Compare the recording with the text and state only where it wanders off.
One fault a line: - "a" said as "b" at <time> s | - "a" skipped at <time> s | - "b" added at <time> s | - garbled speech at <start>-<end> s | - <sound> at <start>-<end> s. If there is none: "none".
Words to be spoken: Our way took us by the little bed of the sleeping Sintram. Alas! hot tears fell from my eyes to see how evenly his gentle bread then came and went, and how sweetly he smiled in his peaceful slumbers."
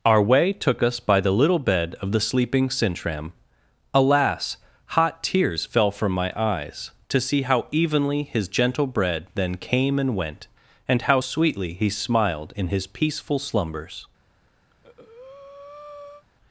- breath at 14.7-16.2 s